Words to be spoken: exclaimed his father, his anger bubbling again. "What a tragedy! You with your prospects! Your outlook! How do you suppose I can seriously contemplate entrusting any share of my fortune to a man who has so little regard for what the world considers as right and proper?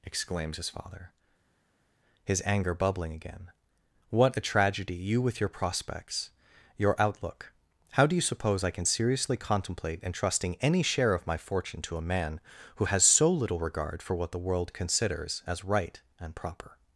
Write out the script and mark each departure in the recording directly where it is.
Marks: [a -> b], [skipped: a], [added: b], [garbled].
[exclaimed -> exclaims] his father, his anger bubbling again. "What a tragedy! You with your prospects! Your outlook! How do you suppose I can seriously contemplate entrusting any share of my fortune to a man who has so little regard for what the world considers as right and proper?